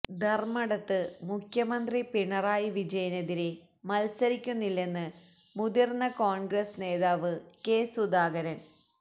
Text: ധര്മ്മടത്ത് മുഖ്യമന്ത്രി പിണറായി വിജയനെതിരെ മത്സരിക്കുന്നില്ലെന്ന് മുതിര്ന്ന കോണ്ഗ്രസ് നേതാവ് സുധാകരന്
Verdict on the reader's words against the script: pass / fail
fail